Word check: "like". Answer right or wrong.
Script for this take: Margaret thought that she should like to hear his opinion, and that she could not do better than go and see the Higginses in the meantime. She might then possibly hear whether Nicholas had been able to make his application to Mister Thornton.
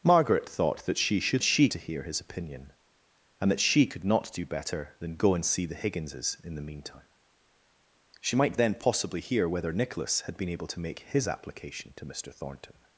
wrong